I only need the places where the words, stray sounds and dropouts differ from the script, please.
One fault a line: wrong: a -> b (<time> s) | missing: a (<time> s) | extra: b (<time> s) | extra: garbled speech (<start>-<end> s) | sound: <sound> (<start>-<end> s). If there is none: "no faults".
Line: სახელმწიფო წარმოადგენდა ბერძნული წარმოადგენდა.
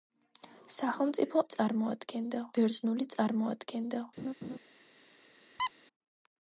sound: laugh (4.2-4.6 s)
sound: squeak (5.6-5.7 s)